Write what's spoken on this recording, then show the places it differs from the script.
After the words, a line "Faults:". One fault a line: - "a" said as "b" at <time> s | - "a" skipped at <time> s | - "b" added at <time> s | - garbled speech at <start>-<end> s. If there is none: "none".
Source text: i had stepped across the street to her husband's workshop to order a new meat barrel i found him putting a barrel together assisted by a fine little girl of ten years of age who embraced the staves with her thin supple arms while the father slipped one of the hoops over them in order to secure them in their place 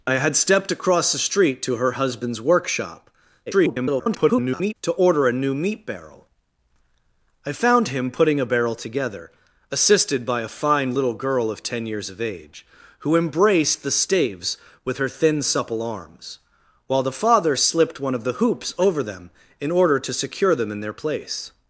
i had stepped across the street to her husband's workshop [garbled] to order a new meat barrel i found him putting a barrel together assisted by a fine little girl of ten years of age who embraced the staves with her thin supple arms while the father slipped one of the hoops over them in order to secure them in their place
Faults:
- garbled speech at 3.5-4.7 s